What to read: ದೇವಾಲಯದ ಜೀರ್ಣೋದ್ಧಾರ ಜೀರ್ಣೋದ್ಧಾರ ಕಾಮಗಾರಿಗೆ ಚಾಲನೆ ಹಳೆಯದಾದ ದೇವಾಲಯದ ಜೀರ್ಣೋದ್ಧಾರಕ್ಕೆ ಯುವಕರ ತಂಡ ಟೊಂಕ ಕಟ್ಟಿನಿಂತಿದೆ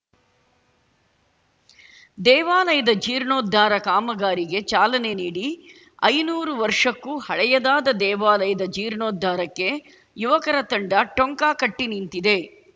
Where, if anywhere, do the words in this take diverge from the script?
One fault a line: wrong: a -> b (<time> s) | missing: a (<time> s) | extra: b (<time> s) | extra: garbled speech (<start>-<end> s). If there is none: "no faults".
missing: ಜೀರ್ಣೋದ್ಧಾರ (3.7 s)
extra: ನೀಡಿ ಐನೂರು ವರ್ಷಕ್ಕೂ (5.1 s)